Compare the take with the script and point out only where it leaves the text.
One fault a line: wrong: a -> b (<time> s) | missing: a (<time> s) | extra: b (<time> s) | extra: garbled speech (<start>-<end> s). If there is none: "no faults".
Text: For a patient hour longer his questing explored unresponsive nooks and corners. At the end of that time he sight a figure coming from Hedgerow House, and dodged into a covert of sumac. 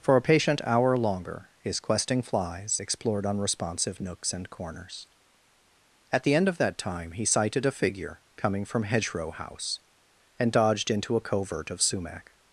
extra: flies (2.2 s)
wrong: sight -> sighted (7.2 s)